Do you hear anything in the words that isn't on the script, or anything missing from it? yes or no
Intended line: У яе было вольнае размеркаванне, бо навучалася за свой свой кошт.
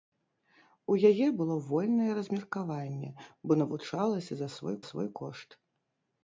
no